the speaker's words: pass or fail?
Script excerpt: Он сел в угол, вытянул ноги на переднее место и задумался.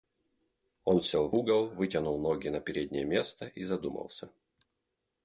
pass